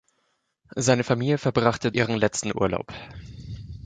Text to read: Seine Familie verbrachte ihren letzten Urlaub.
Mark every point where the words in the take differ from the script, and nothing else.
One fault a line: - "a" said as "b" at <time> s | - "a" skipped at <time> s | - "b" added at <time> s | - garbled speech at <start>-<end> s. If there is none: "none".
none